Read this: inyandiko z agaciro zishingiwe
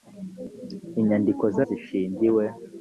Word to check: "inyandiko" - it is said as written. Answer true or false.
true